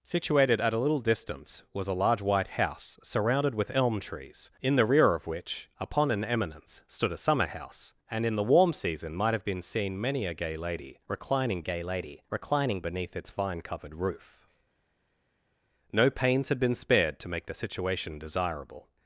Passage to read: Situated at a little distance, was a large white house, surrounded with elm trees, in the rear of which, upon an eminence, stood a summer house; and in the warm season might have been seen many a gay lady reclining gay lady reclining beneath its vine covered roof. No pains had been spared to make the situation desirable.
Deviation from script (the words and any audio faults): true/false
false